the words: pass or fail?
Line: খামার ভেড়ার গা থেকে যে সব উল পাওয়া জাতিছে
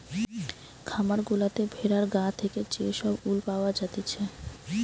fail